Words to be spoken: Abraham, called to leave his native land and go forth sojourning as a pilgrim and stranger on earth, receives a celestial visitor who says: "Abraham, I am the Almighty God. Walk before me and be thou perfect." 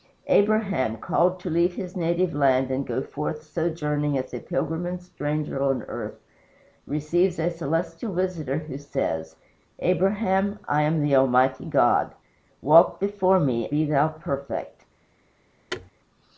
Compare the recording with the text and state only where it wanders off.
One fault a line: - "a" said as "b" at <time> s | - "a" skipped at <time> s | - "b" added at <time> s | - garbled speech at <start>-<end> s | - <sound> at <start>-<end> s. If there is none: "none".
- "and" skipped at 13.7 s
- thud at 15.7-15.9 s